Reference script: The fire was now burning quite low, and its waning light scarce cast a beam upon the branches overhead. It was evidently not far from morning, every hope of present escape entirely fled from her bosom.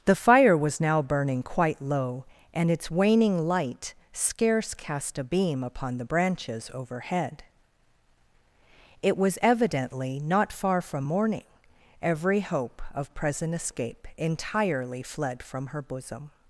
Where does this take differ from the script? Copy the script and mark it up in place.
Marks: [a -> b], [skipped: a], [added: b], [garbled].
The fire was now burning quite low, and its waning light scarce cast a beam upon the branches overhead. It was evidently not far from morning, every hope of present escape entirely fled from her bosom.